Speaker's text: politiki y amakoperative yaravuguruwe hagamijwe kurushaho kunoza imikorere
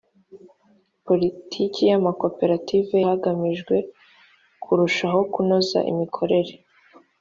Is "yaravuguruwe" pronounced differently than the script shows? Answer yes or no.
yes